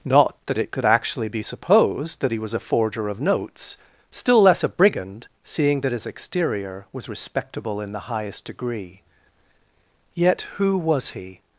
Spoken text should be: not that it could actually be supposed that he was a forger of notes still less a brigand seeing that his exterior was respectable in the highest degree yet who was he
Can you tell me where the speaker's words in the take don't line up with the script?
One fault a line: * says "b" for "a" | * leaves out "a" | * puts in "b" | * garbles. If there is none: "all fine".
all fine